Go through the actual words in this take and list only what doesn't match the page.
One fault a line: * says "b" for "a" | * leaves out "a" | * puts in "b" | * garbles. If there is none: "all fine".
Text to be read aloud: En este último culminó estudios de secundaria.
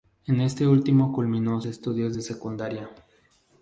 all fine